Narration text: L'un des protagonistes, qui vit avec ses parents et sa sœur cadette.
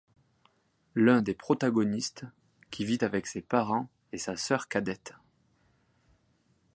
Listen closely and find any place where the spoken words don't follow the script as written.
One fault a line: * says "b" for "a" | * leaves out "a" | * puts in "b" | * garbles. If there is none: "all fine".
all fine